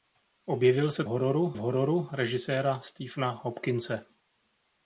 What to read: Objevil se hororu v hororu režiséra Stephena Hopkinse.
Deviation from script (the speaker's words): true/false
false